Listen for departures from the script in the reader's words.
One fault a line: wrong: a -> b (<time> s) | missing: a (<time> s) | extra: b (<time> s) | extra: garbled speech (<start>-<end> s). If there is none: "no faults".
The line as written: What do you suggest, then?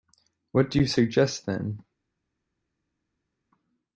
no faults